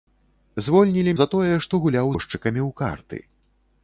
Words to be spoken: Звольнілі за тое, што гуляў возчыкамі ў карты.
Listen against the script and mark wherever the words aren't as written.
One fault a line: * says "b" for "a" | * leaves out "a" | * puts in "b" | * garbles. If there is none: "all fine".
all fine